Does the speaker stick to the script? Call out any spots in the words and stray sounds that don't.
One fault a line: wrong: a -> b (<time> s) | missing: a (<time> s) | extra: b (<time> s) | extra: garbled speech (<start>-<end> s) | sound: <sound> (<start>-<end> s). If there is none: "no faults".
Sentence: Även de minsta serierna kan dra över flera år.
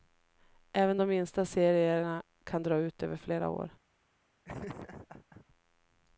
extra: ut (2.8 s)
sound: laugh (4.4-5.5 s)